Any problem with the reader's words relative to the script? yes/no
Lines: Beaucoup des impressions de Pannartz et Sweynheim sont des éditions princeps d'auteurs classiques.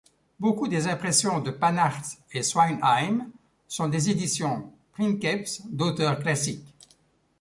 no